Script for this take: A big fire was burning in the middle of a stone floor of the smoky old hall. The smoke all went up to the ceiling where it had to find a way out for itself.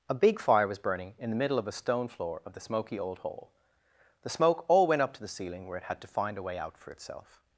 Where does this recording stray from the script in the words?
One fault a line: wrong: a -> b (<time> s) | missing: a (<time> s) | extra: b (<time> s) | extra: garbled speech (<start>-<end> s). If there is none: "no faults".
no faults